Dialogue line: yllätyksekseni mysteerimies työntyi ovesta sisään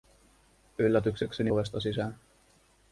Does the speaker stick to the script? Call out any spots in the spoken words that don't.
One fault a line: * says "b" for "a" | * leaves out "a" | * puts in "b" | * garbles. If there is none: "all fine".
* leaves out "mysteerimies työntyi"